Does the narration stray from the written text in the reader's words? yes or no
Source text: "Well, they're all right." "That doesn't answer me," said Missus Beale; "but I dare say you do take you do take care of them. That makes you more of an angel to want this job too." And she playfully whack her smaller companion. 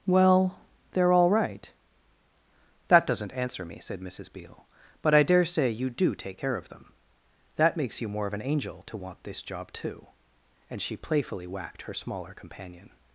yes